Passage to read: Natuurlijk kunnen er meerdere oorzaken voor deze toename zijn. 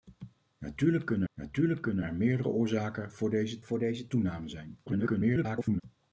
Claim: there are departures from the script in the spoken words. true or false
true